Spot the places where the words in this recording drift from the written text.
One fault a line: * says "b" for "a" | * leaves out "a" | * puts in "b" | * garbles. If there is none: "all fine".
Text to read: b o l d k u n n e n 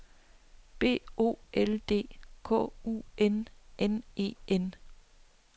all fine